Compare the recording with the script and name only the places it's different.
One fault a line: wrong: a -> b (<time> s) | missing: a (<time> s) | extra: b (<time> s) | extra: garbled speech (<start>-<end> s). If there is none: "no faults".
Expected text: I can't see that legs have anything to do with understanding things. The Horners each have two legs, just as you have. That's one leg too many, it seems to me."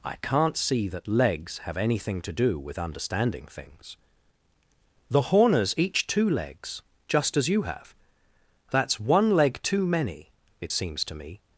missing: have (6.1 s)